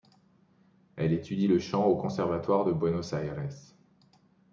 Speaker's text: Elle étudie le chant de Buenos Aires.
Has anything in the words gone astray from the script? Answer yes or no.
yes